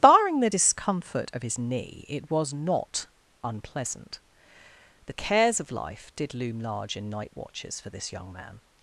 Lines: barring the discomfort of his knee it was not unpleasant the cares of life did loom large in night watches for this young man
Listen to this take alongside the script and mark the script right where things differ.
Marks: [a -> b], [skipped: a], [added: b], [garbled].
barring the discomfort of his knee it was not unpleasant the cares of life did loom large in night watches for this young man